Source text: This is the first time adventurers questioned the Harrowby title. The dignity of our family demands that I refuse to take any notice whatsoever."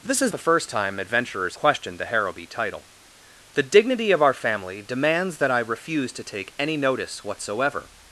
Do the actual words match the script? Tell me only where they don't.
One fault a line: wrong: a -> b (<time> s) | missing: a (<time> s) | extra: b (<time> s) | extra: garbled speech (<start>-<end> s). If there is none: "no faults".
no faults